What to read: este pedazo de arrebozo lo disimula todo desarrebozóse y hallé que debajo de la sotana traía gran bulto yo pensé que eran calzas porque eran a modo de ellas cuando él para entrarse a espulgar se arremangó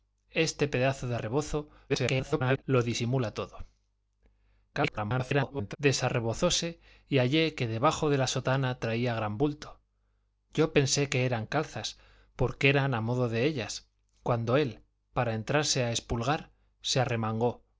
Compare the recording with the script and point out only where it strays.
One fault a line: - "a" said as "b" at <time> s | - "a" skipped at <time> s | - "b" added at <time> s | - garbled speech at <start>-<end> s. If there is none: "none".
- garbled speech at 1.9-2.6 s
- garbled speech at 4.7-5.8 s